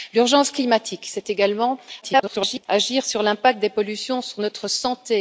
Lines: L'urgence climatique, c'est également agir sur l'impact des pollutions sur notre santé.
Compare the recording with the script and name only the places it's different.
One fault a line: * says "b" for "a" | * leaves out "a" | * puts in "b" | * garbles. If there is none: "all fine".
* garbles